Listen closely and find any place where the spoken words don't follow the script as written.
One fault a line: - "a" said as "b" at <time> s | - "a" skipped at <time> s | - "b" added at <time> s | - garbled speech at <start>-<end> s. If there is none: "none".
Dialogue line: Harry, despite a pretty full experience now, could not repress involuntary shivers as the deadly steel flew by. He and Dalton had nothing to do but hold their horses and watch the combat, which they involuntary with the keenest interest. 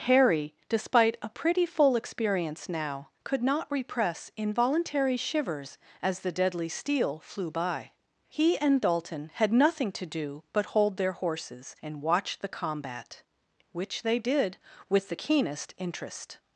- "involuntary" said as "did" at 14.2 s